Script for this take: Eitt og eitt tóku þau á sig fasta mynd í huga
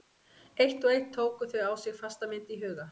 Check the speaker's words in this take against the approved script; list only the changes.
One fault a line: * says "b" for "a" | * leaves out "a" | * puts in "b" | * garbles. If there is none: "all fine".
all fine